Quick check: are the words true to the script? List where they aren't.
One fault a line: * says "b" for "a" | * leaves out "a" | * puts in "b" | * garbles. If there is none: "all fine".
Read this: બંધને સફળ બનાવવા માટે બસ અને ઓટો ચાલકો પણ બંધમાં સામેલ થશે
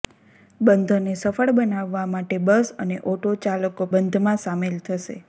* leaves out "પણ"